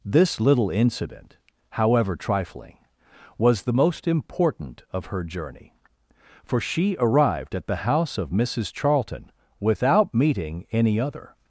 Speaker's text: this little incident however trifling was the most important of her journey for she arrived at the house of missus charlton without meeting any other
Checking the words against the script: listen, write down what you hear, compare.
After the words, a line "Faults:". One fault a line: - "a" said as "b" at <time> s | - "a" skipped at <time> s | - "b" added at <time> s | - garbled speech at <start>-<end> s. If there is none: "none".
this little incident however trifling was the most important of her journey for she arrived at the house of missus charlton without meeting any other
Faults:
none